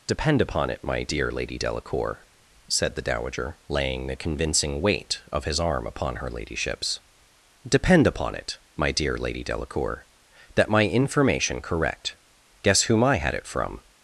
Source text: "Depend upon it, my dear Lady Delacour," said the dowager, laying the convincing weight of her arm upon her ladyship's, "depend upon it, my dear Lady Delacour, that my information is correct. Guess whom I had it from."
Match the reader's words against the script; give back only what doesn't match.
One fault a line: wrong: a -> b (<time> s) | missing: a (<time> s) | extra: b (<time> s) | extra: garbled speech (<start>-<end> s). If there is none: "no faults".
wrong: her -> his (5.5 s)
missing: is (11.6 s)